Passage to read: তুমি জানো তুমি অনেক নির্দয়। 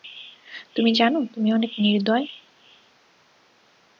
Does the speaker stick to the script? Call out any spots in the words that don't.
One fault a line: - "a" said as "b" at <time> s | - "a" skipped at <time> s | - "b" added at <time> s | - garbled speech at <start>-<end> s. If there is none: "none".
none